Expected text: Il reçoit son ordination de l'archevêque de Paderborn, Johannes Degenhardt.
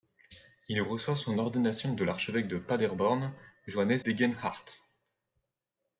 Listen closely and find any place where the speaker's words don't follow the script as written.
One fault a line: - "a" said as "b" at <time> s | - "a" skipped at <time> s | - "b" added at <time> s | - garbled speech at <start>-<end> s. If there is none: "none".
none